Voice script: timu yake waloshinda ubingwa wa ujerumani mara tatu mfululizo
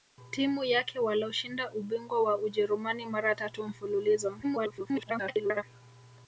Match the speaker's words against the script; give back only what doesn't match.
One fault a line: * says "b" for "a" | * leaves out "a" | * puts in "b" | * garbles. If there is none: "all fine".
* garbles